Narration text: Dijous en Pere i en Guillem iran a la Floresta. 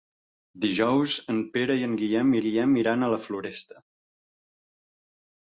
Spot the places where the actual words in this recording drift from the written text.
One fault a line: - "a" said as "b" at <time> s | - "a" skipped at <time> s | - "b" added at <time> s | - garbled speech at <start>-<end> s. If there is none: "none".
- "Guillem" added at 2.4 s